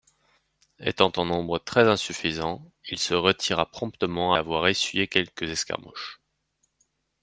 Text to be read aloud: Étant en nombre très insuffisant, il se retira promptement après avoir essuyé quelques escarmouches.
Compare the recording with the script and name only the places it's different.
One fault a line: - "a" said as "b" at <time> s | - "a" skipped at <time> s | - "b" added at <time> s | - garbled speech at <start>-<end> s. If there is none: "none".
- "après" skipped at 4.3 s